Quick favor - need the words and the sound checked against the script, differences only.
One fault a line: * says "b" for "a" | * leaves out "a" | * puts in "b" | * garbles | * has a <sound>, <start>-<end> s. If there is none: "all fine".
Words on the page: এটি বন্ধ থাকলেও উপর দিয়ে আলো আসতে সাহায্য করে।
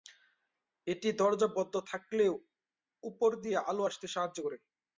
* puts in "দরজা"